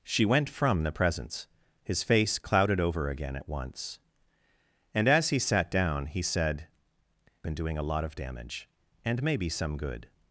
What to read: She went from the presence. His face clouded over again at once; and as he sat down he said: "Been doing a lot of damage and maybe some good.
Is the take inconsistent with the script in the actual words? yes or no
no